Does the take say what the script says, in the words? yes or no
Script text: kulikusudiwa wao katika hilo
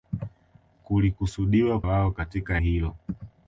yes